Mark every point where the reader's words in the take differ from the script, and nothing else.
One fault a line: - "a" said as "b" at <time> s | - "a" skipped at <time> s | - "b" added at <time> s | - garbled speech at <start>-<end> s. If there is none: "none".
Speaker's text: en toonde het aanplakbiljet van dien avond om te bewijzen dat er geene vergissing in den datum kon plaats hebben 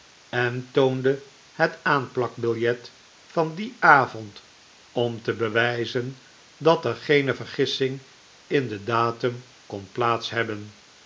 none